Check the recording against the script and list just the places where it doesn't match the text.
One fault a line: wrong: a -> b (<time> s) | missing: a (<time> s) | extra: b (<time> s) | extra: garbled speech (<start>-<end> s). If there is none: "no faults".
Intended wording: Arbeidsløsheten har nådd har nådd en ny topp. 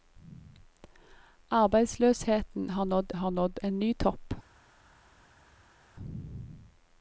no faults